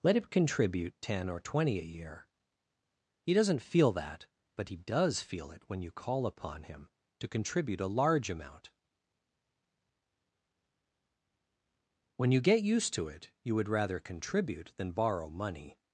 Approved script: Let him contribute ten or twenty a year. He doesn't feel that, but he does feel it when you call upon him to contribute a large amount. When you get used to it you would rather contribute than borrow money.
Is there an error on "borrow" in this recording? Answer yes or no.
no